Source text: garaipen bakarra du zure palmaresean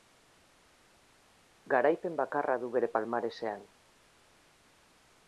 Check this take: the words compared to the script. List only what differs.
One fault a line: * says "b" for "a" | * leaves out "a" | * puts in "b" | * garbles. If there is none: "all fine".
* says "bere" for "zure"